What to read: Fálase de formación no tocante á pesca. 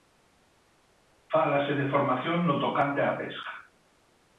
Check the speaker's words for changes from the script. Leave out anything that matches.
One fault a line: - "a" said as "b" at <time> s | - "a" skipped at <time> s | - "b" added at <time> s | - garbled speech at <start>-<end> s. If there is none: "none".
none